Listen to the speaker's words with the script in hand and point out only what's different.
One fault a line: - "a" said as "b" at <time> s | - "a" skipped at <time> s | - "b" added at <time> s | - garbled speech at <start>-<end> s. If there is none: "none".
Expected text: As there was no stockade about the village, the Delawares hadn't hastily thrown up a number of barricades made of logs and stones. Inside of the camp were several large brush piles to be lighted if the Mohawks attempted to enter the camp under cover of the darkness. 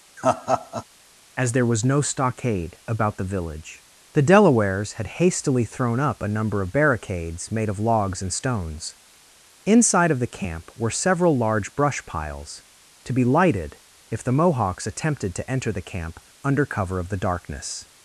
- "hadn't" said as "had" at 4.9 s